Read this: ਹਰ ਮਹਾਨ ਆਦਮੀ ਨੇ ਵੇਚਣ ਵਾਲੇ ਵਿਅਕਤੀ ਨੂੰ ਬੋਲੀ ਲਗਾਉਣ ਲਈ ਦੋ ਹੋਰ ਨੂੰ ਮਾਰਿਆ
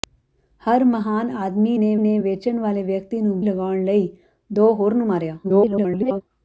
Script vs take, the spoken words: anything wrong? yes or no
yes